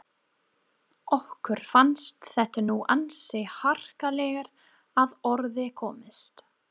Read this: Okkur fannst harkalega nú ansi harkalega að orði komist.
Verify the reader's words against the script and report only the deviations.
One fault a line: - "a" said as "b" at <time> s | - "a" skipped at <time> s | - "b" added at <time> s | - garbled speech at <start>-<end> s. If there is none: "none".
- "harkalega" said as "þetta" at 2.3 s